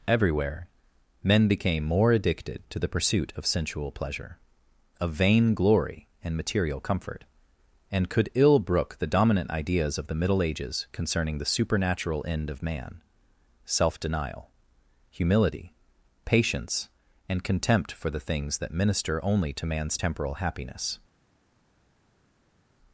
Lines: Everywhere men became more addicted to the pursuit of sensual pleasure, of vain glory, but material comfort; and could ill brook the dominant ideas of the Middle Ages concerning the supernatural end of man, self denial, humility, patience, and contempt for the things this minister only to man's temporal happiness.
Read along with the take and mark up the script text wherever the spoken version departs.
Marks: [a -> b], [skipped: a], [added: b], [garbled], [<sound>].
Everywhere men became more addicted to the pursuit of sensual pleasure, of vain glory, [but -> and] material comfort; and could ill brook the dominant ideas of the Middle Ages concerning the supernatural end of man, self denial, humility, patience, and contempt for the things [this -> that] minister only to man's temporal happiness.